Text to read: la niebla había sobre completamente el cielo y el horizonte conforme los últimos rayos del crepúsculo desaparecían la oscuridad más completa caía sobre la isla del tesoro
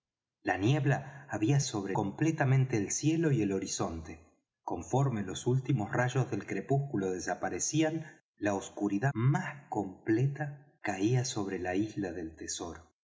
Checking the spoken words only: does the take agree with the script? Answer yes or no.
yes